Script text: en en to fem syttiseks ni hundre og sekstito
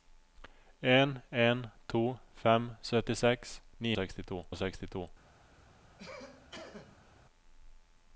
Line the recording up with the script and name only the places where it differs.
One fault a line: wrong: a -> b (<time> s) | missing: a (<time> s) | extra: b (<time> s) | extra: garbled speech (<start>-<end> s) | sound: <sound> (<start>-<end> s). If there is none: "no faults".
wrong: hundre -> sekstito (3.9 s)
sound: cough (6.0-7.1 s)